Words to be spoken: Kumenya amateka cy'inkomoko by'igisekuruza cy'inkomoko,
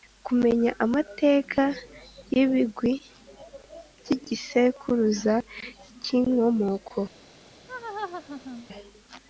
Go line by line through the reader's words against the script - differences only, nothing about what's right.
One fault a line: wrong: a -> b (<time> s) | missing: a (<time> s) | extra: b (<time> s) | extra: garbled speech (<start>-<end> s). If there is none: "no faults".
wrong: cy'inkomoko -> y'ibigwi (2.3 s)